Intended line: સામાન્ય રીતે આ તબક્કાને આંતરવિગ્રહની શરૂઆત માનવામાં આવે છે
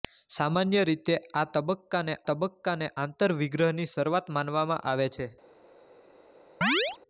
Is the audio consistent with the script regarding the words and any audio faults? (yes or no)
no